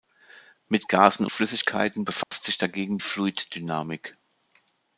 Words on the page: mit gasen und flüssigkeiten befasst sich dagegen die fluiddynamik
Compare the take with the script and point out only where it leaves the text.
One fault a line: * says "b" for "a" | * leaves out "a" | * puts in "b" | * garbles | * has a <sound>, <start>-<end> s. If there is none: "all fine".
* leaves out "und"
* has a dropout, 2.2-2.3 s
* leaves out "die"